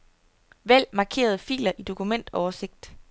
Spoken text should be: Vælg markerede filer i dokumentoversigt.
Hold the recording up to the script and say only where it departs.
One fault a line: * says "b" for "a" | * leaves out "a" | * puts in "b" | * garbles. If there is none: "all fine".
all fine